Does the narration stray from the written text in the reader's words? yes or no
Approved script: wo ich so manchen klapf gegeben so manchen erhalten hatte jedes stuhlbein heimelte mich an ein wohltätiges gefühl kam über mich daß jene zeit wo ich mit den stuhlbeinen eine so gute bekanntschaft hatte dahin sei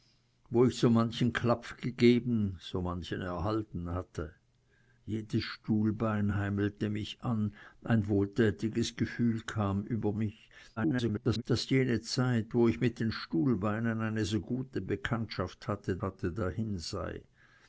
yes